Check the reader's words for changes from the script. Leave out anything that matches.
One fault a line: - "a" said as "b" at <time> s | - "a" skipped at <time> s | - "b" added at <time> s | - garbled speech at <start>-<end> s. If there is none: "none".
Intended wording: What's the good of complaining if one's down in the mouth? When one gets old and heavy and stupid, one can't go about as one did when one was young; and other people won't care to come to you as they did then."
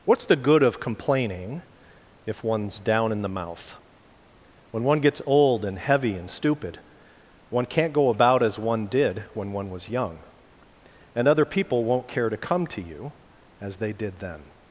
none